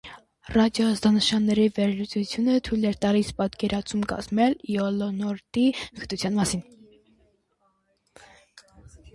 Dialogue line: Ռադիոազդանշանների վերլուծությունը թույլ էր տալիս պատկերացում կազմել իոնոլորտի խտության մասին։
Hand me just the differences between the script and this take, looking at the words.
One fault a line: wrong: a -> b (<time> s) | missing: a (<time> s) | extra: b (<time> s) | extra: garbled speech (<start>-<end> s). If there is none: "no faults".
no faults